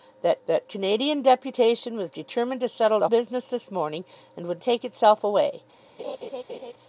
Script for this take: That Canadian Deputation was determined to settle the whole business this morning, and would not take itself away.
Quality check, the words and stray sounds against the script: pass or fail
fail